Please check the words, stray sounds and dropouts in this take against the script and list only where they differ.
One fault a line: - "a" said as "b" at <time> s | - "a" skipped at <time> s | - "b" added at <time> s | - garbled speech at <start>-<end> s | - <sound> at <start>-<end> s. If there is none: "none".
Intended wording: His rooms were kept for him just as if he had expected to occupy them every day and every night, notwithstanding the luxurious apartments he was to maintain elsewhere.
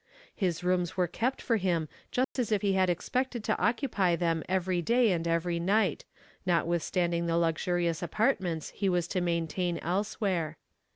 - dropout at 2.2-2.4 s